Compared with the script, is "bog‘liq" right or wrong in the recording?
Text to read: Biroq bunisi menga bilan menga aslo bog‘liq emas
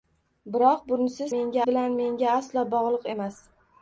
right